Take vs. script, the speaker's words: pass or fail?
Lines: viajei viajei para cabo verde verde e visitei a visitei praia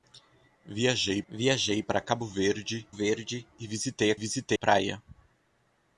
pass